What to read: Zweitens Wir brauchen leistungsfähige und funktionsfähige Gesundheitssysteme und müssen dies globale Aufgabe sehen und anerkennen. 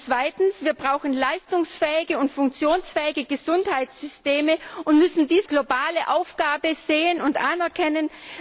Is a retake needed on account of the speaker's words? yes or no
no